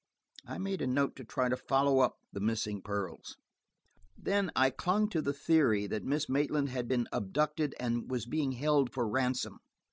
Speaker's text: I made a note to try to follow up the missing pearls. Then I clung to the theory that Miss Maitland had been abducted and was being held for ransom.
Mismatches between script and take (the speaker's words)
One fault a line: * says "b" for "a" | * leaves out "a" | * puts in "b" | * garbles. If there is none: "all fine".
all fine